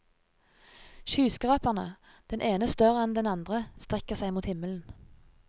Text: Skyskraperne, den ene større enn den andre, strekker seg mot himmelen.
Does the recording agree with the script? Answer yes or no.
yes